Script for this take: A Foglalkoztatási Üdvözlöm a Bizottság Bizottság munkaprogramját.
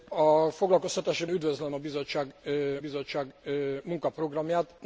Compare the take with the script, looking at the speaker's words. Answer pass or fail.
pass